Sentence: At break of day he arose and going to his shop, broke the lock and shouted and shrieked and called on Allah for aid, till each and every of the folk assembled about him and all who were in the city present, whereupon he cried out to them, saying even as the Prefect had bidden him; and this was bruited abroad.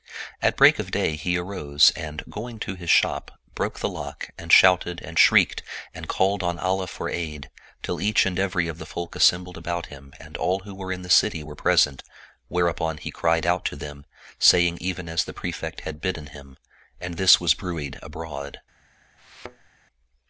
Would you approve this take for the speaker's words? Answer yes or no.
no